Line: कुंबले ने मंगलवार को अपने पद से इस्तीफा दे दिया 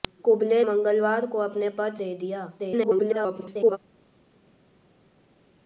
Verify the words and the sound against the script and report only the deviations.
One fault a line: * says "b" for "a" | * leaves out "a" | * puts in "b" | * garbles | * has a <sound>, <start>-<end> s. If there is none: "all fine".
* leaves out "ने"
* leaves out "से इस्तीफा"
* garbles